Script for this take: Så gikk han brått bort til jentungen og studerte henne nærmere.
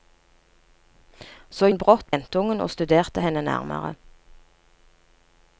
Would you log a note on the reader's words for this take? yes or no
yes